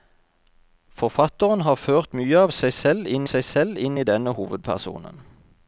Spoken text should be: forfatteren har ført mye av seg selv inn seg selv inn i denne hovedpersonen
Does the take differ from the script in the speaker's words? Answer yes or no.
no